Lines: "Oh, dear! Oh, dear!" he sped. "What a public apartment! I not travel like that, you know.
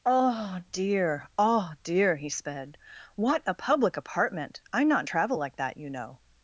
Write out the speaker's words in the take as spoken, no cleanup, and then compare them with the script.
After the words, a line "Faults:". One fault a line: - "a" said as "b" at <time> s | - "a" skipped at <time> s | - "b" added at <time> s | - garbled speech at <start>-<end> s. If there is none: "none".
"Oh, dear! Oh, dear!" he sped. "What a public apartment! I not travel like that, you know.
Faults:
none